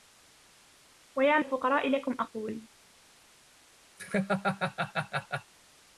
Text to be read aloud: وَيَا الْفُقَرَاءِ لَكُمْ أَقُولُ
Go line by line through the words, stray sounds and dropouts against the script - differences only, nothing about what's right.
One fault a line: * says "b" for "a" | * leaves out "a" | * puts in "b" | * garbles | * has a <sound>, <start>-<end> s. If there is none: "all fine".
* has a laugh, 4.0-5.5 s